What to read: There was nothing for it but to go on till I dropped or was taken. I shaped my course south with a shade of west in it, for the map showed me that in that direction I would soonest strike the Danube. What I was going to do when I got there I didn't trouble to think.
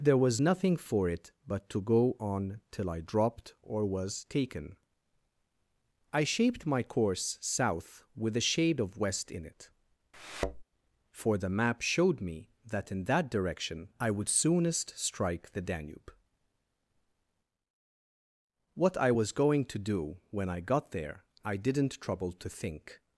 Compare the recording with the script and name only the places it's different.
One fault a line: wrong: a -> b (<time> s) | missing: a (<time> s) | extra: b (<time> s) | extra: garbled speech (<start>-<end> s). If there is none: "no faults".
no faults